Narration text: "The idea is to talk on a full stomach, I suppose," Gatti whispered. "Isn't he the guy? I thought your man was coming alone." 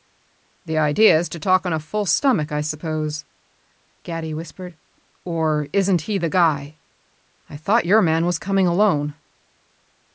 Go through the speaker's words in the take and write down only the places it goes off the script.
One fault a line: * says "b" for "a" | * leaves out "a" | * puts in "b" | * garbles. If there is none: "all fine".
* puts in "Or"